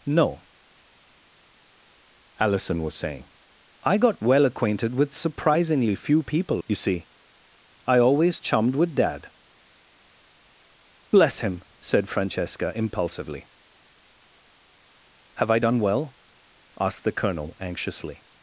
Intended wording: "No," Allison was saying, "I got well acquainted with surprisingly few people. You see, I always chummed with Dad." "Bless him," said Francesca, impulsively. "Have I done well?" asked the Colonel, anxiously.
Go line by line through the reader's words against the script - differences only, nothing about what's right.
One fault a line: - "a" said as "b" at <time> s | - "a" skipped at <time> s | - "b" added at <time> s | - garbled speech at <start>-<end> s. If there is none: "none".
none